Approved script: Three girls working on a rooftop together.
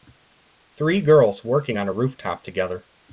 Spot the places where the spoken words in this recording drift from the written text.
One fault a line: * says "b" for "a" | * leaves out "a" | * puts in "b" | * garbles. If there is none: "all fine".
all fine